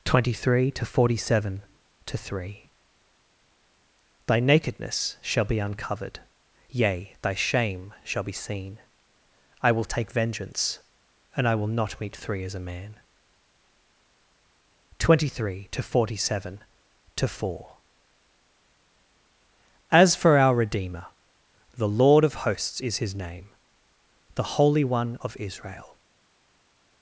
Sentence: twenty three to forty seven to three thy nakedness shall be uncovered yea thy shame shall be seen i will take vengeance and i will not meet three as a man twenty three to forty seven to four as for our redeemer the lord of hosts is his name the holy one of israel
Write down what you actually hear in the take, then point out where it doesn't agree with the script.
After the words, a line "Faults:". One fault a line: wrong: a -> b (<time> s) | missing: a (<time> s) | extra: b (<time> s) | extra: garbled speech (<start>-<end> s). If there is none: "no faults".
twenty three to forty seven to three thy nakedness shall be uncovered yea thy shame shall be seen i will take vengeance and i will not meet three as a man twenty three to forty seven to four as for our redeemer the lord of hosts is his name the holy one of israel
Faults:
no faults